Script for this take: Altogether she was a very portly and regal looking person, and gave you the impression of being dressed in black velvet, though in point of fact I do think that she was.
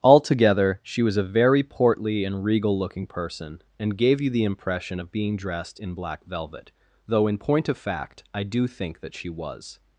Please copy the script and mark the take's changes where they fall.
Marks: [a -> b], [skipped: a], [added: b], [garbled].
Altogether she was a very portly and regal looking person, and gave you the impression of being dressed in black velvet, though in point of fact I do think that she was.